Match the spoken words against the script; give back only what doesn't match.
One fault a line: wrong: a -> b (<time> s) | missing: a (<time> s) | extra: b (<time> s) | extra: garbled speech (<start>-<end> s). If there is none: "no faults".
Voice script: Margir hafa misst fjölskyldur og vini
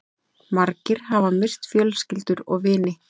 no faults